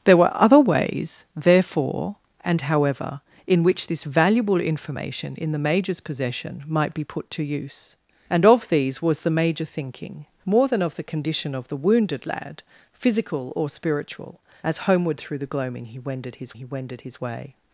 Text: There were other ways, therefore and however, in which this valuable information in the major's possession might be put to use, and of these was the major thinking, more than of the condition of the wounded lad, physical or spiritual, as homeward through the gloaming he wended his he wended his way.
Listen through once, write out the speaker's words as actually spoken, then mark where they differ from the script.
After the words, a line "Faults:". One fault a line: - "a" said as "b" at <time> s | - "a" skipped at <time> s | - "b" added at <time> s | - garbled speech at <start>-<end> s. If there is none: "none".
There were other ways, therefore and however, in which this valuable information in the major's possession might be put to use, and of these was the major thinking, more than of the condition of the wounded lad, physical or spiritual, as homeward through the gloaming he wended his he wended his way.
Faults:
none